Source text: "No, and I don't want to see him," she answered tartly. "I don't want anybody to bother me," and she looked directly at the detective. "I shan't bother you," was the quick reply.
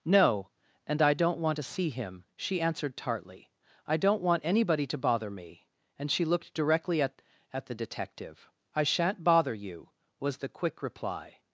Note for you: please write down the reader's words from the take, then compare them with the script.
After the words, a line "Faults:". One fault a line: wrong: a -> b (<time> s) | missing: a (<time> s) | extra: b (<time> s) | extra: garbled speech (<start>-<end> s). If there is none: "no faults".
"No, and I don't want to see him," she answered tartly. "I don't want anybody to bother me," and she looked directly at at the detective. "I shan't bother you," was the quick reply.
Faults:
extra: at (7.5 s)